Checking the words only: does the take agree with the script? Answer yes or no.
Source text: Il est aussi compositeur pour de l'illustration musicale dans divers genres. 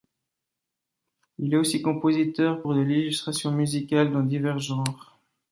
yes